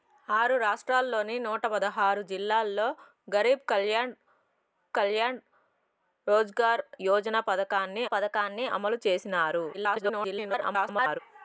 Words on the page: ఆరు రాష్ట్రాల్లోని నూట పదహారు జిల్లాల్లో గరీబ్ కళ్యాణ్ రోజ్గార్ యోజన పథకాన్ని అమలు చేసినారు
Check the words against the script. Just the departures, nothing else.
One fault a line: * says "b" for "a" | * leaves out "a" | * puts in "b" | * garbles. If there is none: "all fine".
* puts in "కళ్యాణ్"
* puts in "పథకాన్ని"
* garbles